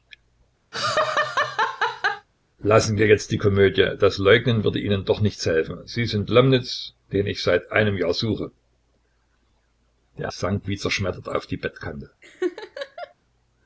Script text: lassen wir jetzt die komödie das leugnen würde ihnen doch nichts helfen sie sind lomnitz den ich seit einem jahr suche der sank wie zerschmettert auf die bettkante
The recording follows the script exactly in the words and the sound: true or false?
false